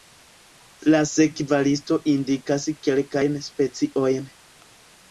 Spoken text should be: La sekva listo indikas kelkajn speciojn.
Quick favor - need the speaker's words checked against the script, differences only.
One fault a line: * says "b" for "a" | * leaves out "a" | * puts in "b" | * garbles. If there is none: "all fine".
all fine